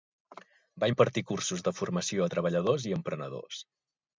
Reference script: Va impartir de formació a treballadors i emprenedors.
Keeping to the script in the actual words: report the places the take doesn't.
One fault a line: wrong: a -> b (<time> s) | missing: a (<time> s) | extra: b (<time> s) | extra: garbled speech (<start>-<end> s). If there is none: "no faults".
extra: cursos (1.3 s)